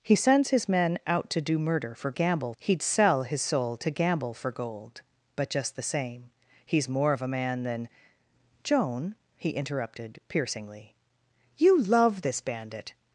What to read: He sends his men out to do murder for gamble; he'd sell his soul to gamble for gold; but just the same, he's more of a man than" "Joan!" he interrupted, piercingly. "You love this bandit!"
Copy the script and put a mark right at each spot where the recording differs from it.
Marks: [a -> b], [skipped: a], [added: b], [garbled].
He sends his men out to do murder for gamble; he'd sell his soul to gamble for gold; but just the same, he's more of a man than" "Joan!" he interrupted, piercingly. "You love this bandit!"